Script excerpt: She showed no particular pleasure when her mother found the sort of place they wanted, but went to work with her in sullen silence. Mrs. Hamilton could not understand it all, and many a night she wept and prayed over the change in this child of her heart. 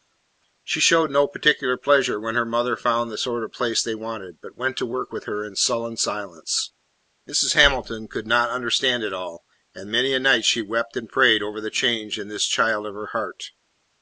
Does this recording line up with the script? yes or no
yes